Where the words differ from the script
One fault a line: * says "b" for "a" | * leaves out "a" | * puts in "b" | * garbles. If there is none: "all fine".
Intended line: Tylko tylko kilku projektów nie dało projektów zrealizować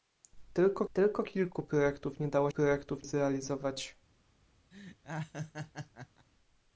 all fine